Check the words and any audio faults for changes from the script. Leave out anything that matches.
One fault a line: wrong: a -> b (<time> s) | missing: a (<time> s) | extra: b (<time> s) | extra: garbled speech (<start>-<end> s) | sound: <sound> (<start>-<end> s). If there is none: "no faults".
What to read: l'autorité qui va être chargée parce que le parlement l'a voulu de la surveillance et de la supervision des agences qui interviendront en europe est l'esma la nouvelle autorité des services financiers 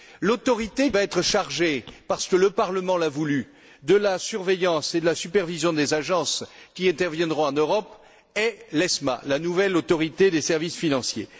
missing: qui (0.9 s)